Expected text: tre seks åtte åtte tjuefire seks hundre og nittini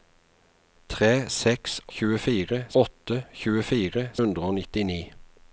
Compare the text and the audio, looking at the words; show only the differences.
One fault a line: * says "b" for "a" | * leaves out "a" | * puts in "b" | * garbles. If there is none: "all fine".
* says "tjuefire" for "åtte"
* leaves out "seks"